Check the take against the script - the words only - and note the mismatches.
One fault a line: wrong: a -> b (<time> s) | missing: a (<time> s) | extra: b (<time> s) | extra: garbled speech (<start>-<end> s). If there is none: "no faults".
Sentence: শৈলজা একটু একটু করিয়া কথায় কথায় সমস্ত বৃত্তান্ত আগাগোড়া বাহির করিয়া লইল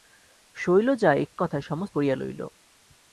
missing: একটু করিয়া (1.4 s)
missing: কথায় (1.6 s)
missing: বৃত্তান্ত আগাগোড়া বাহির (2.0 s)